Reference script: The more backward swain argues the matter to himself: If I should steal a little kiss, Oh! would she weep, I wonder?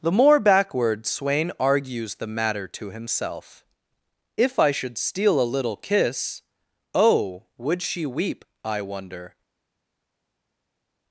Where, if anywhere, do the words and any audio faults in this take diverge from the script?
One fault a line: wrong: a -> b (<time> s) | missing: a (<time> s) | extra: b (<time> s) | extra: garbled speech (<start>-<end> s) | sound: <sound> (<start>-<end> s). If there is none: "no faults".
no faults